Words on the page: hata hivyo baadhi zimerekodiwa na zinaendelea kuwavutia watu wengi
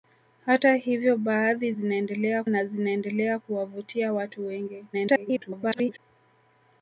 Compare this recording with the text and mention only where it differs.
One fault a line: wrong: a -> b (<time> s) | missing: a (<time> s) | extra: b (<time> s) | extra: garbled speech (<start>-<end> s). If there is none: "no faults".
wrong: zimerekodiwa -> zinaendelea (1.7 s)
extra: garbled speech (4.9-6.0 s)